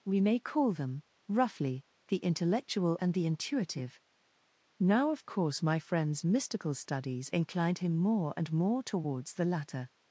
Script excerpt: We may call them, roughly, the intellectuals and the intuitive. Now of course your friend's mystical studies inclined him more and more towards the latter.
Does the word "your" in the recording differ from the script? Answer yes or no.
yes